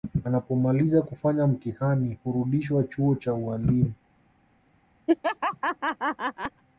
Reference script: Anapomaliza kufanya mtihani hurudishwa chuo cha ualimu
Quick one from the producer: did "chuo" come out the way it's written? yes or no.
yes